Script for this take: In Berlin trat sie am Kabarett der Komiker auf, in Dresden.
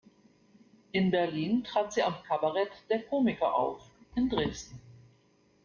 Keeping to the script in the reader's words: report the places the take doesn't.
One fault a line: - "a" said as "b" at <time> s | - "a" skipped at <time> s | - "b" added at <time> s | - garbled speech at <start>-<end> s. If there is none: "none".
none